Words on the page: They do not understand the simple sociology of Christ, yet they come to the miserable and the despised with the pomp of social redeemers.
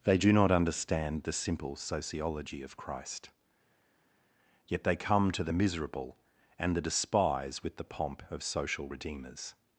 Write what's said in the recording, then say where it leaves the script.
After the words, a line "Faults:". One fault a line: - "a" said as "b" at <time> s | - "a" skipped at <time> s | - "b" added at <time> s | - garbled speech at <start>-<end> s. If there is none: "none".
They do not understand the simple sociology of Christ, yet they come to the miserable and the despise with the pomp of social redeemers.
Faults:
- "despised" said as "despise" at 6.8 s